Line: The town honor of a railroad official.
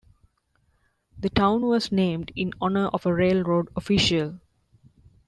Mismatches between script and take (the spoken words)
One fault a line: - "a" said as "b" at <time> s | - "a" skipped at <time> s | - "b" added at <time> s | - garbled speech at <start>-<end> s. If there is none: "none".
- "was named in" added at 1.6 s